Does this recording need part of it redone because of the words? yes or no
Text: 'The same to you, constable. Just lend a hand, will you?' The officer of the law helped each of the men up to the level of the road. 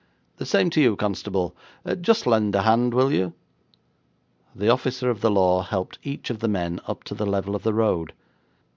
no